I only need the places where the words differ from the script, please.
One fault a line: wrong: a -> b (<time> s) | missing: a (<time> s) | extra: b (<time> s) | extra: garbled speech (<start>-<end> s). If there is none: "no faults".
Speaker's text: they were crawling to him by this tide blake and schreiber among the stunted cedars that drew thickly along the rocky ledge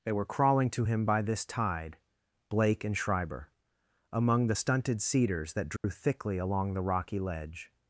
no faults